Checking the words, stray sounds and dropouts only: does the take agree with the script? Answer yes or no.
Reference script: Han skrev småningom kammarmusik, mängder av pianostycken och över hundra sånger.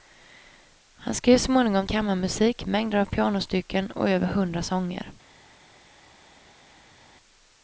yes